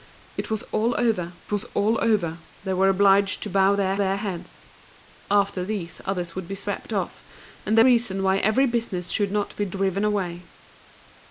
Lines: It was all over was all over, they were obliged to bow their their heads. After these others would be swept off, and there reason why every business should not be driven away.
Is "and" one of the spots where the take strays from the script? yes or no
no